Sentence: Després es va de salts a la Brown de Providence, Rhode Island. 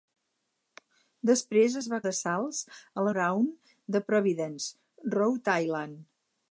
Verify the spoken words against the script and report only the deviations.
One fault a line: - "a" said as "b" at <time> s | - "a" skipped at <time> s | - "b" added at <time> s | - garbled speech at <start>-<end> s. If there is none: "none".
none